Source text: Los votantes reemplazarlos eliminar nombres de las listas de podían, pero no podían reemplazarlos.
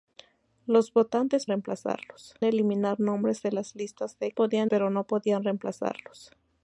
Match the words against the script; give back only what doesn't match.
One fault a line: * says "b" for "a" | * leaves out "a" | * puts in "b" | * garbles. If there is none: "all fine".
all fine